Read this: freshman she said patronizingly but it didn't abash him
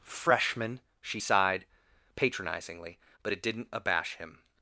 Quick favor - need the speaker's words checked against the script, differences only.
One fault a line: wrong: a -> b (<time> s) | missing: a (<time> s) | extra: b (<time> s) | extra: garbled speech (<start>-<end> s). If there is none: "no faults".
wrong: said -> sighed (1.2 s)